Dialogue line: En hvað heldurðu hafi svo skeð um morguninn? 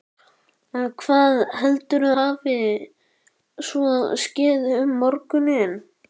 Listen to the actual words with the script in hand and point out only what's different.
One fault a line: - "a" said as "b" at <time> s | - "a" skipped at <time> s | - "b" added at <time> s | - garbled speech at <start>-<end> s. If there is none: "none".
none